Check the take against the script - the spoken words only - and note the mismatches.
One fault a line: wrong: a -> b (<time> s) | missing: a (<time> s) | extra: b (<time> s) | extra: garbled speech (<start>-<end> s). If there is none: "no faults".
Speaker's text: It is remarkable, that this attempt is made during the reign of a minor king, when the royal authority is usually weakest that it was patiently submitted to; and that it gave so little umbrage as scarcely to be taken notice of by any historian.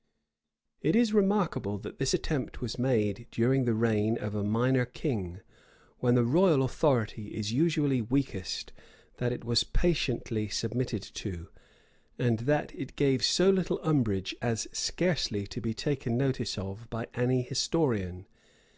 wrong: is -> was (2.6 s)